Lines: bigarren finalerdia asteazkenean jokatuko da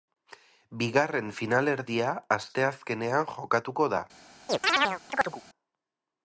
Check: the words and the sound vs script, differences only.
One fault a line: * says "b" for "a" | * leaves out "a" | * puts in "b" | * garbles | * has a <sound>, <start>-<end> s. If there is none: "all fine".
* has a chirp, 4.5-5.4 s